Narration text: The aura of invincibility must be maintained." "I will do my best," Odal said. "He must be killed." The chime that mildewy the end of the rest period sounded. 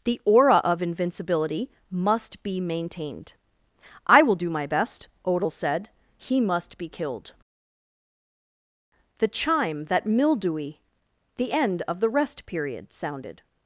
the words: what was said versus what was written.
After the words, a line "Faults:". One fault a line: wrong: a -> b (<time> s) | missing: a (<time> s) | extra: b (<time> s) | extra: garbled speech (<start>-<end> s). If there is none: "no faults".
The aura of invincibility must be maintained." "I will do my best," Odal said. "He must be killed." The chime that mildewy the end of the rest period sounded.
Faults:
no faults